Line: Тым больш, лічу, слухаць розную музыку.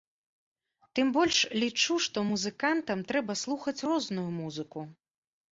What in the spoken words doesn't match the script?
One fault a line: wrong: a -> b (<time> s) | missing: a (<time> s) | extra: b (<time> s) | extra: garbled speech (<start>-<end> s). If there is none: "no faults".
extra: што музыкантам трэба (2.0 s)